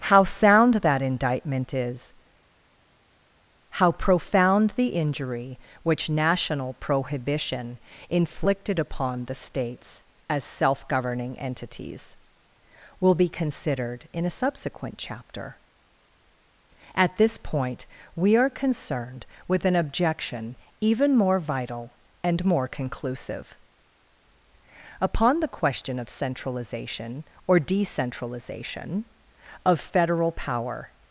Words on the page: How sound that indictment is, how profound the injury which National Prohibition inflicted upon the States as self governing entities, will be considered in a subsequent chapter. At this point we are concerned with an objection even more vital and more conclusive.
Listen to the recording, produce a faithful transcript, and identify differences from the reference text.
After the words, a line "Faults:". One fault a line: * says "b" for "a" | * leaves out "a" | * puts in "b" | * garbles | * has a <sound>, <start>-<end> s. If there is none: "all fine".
How sound that indictment is, how profound the injury which National Prohibition inflicted upon the States as self governing entities, will be considered in a subsequent chapter. At this point we are concerned with an objection even more vital and more conclusive. Upon the question of centralization or decentralization, of Federal power
Faults:
* puts in "Upon the question of centralization or decentralization of Federal power"